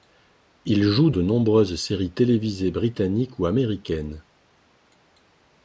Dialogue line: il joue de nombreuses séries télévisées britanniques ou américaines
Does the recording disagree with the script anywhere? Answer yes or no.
no